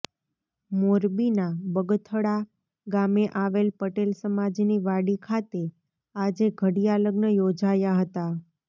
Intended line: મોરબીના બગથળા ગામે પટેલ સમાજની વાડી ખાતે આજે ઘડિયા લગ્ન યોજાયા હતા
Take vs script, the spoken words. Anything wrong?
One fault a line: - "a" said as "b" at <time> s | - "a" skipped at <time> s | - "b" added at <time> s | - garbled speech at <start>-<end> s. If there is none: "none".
- "આવેલ" added at 3.4 s